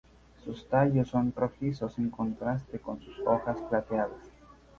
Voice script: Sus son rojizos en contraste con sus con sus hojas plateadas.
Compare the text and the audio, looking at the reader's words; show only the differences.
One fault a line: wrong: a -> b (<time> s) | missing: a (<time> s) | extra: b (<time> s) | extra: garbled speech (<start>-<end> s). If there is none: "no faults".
extra: tallos (0.7 s)
missing: con sus (3.2 s)